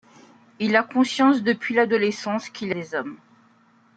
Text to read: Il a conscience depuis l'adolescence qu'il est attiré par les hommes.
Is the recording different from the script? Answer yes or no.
yes